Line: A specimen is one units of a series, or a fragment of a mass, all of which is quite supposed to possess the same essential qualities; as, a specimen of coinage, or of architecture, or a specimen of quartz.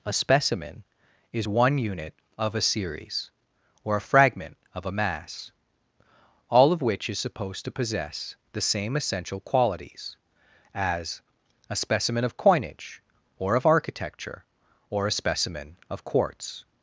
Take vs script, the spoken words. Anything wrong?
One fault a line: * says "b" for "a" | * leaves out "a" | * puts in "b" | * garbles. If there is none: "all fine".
* says "unit" for "units"
* leaves out "quite"